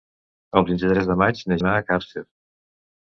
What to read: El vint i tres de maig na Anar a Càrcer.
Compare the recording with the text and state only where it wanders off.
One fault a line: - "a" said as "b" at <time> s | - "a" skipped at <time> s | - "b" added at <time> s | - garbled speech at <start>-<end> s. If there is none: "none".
none